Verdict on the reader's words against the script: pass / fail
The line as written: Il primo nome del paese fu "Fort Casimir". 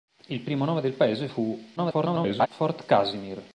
fail